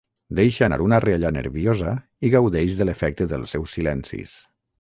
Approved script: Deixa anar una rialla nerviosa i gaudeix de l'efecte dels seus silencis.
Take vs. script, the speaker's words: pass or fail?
pass